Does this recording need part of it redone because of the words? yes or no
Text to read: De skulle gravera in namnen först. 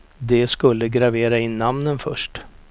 no